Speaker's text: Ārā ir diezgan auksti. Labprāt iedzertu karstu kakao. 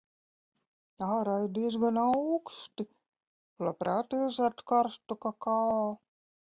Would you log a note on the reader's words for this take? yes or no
no